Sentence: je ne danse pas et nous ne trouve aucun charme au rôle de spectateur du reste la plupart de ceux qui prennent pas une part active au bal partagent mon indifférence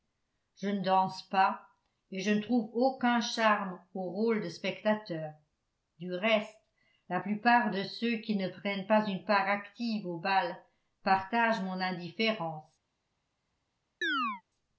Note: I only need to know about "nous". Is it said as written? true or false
false